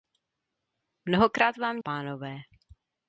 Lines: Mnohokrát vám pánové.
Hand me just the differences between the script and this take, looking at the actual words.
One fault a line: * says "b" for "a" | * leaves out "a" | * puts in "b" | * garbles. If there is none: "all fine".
all fine